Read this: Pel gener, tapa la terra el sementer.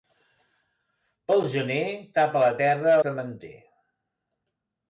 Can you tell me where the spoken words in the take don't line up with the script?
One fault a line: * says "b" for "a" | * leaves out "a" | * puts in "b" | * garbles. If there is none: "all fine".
* leaves out "el"